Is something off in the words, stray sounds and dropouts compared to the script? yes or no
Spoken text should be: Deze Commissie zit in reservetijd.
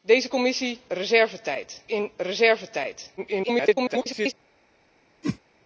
yes